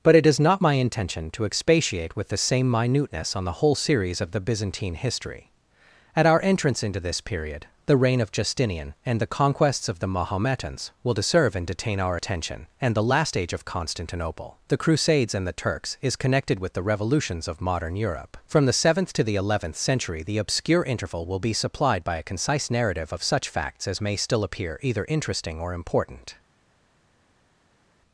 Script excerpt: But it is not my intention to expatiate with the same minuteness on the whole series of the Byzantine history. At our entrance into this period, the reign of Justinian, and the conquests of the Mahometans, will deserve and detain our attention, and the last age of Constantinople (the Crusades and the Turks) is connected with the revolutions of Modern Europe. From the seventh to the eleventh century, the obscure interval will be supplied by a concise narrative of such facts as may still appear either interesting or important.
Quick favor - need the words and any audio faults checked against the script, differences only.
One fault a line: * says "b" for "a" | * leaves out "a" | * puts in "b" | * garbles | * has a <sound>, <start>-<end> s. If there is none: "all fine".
all fine